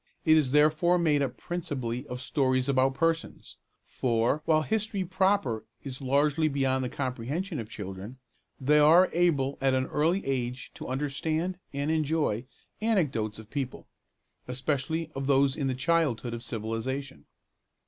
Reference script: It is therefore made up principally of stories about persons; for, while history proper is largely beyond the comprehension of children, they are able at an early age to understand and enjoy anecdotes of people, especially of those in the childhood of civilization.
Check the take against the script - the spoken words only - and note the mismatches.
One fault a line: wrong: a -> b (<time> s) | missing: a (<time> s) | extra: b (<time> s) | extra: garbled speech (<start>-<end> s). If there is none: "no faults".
no faults